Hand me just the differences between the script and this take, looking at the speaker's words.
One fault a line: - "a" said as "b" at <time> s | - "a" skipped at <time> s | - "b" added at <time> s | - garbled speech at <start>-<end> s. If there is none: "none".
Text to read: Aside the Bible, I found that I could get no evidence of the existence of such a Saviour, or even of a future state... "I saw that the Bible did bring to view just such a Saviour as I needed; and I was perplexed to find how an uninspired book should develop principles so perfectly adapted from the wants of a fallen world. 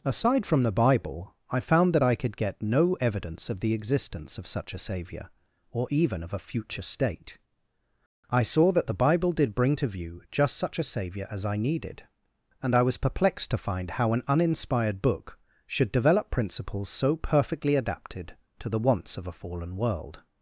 - "from" added at 0.5 s
- "from" said as "to" at 18.6 s